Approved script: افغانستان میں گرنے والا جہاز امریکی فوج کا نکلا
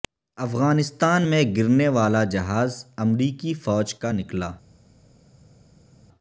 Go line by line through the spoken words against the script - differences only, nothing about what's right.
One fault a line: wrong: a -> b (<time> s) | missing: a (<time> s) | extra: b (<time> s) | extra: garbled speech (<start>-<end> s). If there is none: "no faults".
no faults